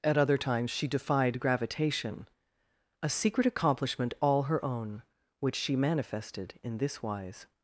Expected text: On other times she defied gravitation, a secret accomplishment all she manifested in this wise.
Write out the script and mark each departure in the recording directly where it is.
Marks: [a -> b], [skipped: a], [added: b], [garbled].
[On -> At] other times she defied gravitation, a secret accomplishment all [added: her own which] she manifested in this wise.